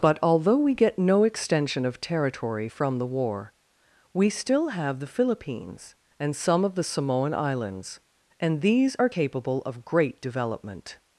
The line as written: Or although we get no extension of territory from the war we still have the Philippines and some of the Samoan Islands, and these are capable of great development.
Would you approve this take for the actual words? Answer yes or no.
no